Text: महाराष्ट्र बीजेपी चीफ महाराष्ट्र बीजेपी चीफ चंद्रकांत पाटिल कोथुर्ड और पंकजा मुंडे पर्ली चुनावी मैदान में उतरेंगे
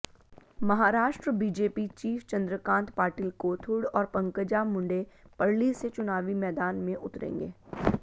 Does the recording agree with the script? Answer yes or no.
no